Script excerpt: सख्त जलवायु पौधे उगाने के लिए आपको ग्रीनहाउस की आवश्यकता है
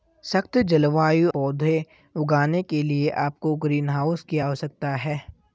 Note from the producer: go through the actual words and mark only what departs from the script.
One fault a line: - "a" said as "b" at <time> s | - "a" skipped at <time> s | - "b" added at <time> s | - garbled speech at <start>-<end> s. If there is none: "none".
none